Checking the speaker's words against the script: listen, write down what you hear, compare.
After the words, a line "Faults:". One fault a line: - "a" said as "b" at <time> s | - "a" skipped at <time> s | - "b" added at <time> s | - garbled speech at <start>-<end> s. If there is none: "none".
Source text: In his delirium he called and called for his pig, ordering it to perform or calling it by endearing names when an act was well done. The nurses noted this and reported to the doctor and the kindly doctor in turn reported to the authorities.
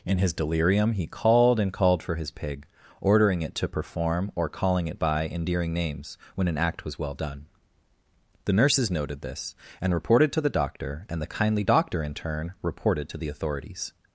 In his delirium he called and called for his pig, ordering it to perform or calling it by endearing names when an act was well done. The nurses noted this and reported to the doctor and the kindly doctor in turn reported to the authorities.
Faults:
none